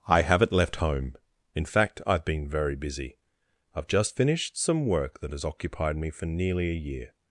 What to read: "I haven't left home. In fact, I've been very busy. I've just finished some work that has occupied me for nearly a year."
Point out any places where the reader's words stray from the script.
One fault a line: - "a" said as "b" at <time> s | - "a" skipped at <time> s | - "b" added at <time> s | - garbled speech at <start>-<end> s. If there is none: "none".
none